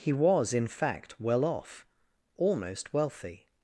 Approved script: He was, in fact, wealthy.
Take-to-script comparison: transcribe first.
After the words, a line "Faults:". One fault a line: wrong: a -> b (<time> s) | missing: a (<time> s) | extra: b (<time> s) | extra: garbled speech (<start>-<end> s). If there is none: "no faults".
He was, in fact, well off almost wealthy.
Faults:
extra: well off almost (1.2 s)